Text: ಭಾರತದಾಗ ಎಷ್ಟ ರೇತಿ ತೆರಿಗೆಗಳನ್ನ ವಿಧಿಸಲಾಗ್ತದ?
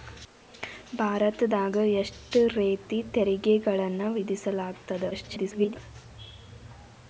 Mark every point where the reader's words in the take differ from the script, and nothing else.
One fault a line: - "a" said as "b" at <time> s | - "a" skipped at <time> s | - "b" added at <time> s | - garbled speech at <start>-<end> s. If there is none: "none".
- garbled speech at 5.1-5.8 s